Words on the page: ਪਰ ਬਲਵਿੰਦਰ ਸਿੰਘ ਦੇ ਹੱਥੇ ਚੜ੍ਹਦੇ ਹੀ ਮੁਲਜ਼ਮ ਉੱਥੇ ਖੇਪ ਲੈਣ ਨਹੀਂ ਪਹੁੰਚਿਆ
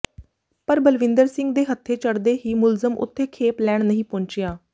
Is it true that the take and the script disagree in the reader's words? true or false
false